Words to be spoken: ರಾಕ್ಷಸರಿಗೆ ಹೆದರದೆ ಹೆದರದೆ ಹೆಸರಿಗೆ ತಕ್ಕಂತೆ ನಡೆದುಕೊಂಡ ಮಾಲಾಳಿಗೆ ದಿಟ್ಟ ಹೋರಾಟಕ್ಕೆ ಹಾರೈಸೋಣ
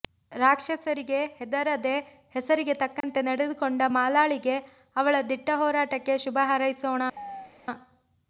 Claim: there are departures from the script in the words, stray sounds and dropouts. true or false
true